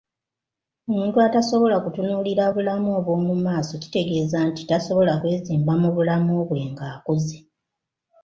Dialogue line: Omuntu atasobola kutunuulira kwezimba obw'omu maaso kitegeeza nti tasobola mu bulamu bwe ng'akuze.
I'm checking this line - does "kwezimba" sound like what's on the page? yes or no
no